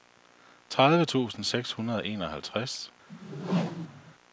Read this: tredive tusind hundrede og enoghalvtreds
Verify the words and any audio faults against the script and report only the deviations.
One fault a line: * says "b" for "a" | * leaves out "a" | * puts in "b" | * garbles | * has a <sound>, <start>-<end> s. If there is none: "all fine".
* puts in "seks"
* has a whoosh, 3.1-4.1 s